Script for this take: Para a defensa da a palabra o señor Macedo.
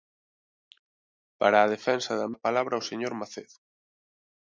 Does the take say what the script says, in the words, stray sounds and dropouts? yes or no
yes